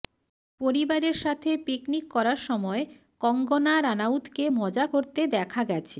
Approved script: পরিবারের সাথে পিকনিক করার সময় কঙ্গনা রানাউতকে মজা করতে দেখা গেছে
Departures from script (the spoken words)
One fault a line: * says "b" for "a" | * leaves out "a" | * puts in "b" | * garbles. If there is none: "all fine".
all fine